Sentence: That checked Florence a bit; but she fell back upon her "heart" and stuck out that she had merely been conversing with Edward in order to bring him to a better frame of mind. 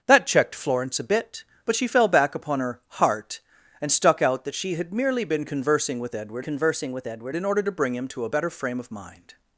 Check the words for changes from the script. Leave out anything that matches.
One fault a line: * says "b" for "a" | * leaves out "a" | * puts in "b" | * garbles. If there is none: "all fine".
* puts in "conversing with Edward"